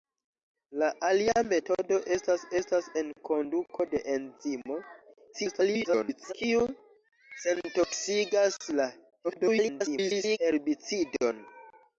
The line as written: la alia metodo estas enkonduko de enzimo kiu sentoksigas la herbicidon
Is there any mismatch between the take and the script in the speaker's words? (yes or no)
yes